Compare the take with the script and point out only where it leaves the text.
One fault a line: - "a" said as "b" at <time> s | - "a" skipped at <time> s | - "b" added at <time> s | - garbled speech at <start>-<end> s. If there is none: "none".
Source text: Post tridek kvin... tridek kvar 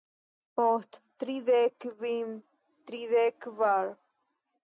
none